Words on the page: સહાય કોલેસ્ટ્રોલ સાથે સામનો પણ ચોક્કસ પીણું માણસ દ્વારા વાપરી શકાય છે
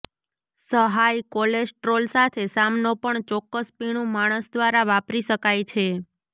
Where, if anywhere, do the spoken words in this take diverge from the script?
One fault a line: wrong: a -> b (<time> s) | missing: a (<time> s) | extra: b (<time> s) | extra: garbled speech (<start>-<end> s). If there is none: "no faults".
no faults